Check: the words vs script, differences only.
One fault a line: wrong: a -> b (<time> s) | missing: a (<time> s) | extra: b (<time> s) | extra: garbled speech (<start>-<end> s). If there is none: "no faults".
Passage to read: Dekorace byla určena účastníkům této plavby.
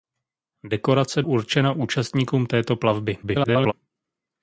missing: byla (1.2 s)
extra: garbled speech (3.2-3.7 s)